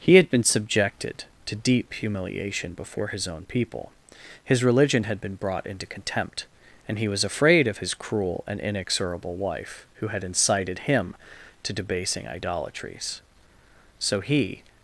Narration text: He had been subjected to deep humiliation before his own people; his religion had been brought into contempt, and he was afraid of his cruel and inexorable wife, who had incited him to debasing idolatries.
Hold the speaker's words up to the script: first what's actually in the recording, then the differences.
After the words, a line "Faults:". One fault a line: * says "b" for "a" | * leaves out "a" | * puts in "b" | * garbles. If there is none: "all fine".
He had been subjected to deep humiliation before his own people; his religion had been brought into contempt, and he was afraid of his cruel and inexorable wife, who had incited him to debasing idolatries. So he
Faults:
* puts in "So he"